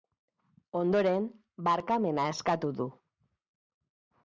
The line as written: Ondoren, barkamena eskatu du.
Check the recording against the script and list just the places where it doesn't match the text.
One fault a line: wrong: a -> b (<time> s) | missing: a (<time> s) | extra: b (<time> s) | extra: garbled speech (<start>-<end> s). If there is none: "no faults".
no faults